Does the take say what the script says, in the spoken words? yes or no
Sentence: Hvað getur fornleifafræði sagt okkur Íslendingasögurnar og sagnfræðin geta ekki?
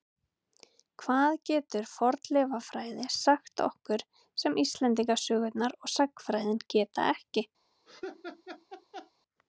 no